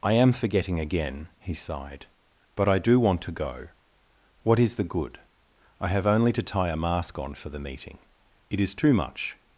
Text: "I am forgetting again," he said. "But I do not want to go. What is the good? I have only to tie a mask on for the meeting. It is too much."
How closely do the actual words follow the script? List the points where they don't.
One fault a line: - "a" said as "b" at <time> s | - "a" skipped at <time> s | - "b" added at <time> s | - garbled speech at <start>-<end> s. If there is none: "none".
- "said" said as "sighed" at 1.5 s
- "not" skipped at 3.0 s